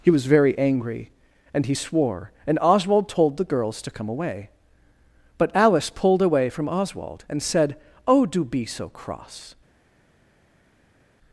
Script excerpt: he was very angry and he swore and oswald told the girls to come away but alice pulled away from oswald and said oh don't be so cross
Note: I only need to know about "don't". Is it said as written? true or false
false